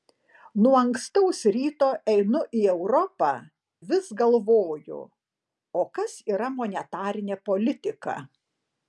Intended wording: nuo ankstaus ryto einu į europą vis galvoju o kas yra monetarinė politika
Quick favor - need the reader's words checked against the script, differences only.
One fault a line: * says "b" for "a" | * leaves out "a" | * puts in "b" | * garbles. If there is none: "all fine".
all fine